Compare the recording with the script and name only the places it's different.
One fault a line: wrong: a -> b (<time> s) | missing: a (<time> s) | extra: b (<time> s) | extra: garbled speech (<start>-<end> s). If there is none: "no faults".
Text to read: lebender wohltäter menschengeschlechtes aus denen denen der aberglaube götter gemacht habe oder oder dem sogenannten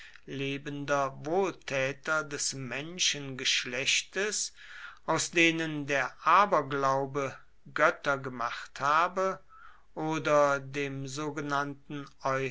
extra: des (2.2 s)
missing: denen (5.8 s)
missing: oder (10.6 s)